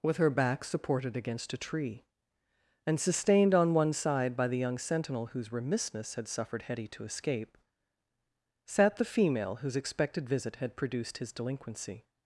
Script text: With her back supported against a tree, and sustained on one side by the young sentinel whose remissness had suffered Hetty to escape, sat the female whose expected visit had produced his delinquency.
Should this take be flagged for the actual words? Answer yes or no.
no